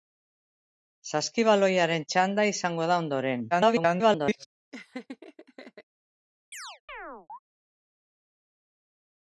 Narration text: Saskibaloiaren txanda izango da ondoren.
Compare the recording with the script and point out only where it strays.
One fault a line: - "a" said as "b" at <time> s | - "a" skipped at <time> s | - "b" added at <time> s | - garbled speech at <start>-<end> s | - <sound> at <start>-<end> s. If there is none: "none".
- garbled speech at 3.5-4.5 s
- laugh at 4.7-5.8 s
- chirp at 6.5-7.4 s